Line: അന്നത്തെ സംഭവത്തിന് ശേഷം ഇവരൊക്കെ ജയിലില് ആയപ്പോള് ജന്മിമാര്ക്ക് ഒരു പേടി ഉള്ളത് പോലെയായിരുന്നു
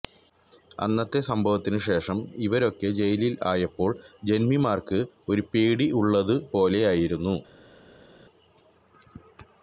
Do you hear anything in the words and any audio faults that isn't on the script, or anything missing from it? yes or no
no